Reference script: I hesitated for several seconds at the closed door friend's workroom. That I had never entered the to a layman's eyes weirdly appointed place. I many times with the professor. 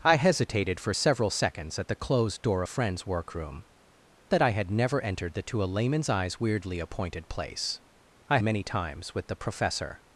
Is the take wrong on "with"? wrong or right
right